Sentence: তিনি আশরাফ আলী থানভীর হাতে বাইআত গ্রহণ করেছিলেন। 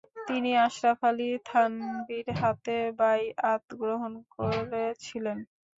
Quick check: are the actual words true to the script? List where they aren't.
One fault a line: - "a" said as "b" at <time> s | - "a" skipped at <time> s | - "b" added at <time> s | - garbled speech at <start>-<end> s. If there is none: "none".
none